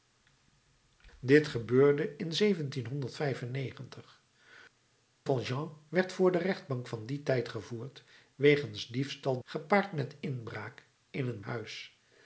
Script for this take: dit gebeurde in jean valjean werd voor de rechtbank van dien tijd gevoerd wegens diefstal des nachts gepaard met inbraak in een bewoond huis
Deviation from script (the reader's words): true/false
true